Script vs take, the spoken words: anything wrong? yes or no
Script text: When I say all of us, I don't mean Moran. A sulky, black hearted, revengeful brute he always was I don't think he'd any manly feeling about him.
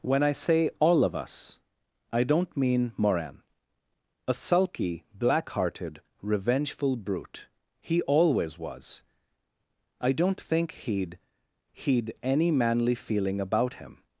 yes